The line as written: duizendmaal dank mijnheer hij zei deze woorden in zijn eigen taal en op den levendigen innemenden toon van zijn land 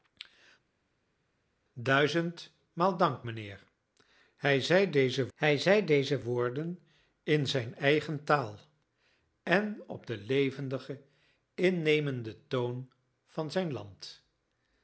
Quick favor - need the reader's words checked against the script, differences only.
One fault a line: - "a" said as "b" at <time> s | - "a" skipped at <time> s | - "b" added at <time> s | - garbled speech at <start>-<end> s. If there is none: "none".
- "hij zei deze" added at 5.3 s